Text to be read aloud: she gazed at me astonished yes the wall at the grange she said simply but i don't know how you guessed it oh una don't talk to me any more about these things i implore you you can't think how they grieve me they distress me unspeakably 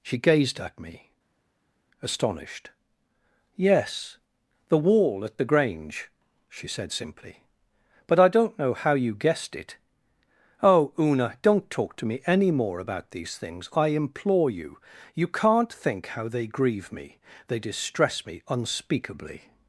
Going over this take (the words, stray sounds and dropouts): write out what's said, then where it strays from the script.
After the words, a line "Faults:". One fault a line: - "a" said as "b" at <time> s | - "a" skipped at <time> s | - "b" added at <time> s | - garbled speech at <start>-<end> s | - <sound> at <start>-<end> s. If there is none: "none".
she gazed at me astonished yes the wall at the grange she said simply but i don't know how you guessed it oh una don't talk to me any more about these things i implore you you can't think how they grieve me they distress me unspeakably
Faults:
none